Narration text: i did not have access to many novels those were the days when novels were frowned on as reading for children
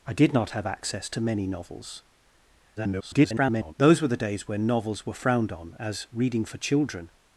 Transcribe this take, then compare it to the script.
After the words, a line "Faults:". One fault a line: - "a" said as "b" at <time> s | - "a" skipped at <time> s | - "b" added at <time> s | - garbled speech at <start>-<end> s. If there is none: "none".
i did not have access to many novels [garbled] those were the days when novels were frowned on as reading for children
Faults:
- garbled speech at 2.8-3.7 s